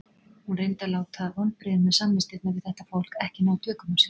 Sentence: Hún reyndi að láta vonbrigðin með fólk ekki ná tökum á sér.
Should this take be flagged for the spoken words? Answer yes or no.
yes